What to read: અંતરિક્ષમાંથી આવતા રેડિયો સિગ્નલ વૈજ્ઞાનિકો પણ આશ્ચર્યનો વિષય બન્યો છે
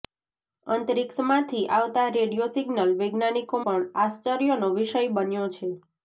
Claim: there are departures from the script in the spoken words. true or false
false